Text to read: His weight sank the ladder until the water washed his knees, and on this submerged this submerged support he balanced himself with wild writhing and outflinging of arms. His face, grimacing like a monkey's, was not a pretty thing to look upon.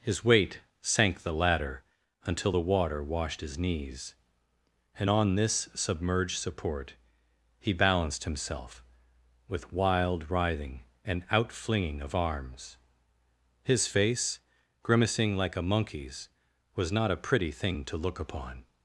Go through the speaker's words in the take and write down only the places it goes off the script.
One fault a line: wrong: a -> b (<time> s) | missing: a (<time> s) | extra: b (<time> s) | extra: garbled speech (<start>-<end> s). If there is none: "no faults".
missing: this submerged (6.4 s)